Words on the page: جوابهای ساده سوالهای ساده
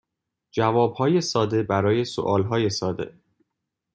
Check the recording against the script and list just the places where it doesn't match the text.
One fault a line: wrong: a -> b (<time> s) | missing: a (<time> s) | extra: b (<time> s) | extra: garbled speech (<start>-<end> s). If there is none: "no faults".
extra: برای (1.6 s)